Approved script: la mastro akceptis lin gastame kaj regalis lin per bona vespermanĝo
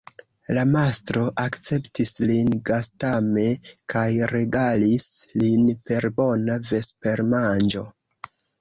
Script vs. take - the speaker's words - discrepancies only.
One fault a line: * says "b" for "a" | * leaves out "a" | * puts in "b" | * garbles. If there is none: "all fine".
all fine